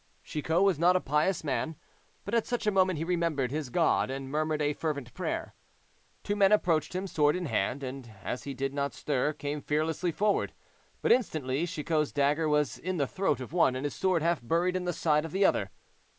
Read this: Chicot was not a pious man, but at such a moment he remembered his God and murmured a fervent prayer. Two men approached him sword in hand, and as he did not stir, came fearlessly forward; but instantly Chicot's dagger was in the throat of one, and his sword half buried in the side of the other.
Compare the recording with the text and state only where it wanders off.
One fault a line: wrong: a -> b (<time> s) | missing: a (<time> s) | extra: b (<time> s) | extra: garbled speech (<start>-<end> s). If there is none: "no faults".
no faults